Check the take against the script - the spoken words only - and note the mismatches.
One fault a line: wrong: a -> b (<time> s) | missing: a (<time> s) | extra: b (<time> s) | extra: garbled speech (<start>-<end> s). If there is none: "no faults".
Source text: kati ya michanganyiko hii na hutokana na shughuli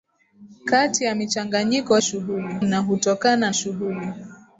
wrong: hii -> shughuli (2.0 s)
missing: na (3.5 s)